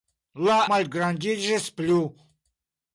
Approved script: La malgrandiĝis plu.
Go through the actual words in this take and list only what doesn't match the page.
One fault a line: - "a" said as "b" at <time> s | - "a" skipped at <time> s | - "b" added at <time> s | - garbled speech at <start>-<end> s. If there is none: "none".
none